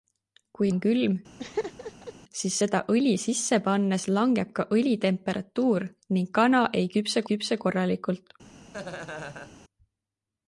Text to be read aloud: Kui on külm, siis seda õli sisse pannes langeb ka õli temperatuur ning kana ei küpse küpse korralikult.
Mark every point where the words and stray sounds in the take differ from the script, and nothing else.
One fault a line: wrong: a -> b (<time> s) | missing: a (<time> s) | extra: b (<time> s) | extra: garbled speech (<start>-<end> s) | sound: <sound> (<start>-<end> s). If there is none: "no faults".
sound: laugh (1.4-2.1 s)
sound: laugh (8.7-9.6 s)